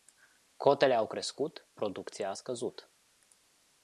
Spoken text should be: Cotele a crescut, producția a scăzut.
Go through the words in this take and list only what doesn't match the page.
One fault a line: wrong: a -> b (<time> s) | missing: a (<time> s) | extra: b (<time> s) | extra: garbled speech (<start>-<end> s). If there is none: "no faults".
wrong: a -> au (0.9 s)